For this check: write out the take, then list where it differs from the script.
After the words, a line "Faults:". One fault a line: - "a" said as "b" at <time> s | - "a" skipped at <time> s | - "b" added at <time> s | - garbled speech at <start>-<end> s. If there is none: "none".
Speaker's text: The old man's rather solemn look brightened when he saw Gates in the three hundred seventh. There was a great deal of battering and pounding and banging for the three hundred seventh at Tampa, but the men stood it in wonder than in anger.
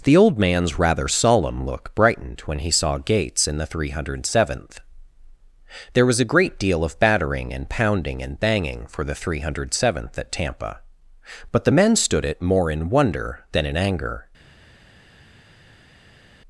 The old man's rather solemn look brightened when he saw Gates in the three hundred seventh. There was a great deal of battering and pounding and banging for the three hundred seventh at Tampa, but the men stood it more in wonder than in anger.
Faults:
- "more" added at 12.4 s